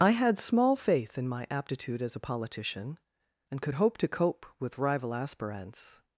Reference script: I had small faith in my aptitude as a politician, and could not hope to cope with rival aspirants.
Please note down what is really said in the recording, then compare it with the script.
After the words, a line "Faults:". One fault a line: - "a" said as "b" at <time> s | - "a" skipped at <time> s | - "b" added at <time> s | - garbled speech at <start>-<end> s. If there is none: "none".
I had small faith in my aptitude as a politician, and could hope to cope with rival aspirants.
Faults:
- "not" skipped at 3.8 s